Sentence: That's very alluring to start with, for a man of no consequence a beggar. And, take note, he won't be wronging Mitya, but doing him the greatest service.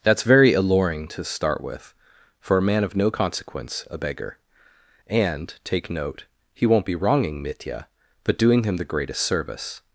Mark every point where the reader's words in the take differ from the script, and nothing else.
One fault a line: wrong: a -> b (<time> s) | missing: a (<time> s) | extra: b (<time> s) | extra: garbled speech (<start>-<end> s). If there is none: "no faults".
no faults